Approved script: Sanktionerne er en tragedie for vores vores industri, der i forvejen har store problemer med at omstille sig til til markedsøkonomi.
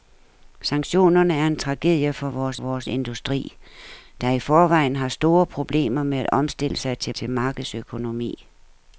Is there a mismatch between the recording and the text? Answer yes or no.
no